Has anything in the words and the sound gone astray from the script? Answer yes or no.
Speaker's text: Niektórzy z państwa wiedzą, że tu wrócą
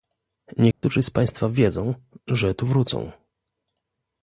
yes